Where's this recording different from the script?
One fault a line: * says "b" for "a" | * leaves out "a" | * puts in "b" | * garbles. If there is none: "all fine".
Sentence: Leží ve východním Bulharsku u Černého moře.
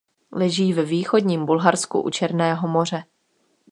all fine